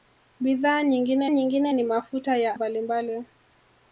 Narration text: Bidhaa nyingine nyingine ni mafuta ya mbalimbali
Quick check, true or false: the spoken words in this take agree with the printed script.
true